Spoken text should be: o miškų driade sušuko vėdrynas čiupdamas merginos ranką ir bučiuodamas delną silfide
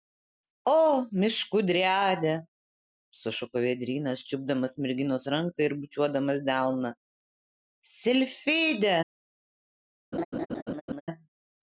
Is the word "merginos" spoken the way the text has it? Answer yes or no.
yes